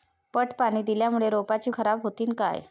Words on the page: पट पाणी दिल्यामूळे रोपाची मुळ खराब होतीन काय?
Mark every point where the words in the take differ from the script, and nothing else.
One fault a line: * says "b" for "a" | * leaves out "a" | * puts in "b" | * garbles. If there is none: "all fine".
* leaves out "मुळ"